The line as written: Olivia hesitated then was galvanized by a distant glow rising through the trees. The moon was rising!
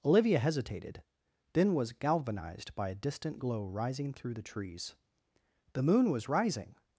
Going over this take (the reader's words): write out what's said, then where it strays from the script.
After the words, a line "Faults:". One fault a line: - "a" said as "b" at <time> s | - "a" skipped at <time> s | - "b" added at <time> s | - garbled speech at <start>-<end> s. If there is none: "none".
Olivia hesitated then was galvanized by a distant glow rising through the trees. The moon was rising!
Faults:
none